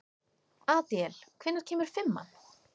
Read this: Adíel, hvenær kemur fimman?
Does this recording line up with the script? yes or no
yes